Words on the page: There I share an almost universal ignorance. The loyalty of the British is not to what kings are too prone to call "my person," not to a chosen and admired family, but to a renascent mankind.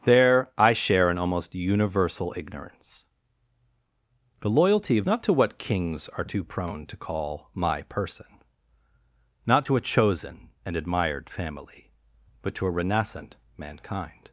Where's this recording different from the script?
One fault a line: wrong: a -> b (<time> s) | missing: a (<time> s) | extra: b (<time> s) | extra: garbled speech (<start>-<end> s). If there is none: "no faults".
missing: the British is (5.0 s)